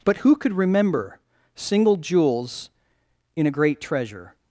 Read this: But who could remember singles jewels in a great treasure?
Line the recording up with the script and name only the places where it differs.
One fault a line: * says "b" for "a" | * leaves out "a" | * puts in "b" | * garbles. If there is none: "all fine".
* says "single" for "singles"